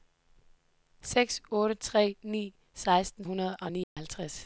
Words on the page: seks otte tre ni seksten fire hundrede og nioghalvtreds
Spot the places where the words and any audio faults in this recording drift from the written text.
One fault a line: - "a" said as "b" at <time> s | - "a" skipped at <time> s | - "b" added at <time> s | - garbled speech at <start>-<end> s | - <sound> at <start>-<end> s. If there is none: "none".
- "fire" skipped at 3.2 s
- dropout at 3.8-4.0 s